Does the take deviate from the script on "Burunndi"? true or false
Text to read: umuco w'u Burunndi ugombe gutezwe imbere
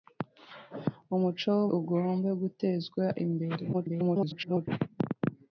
true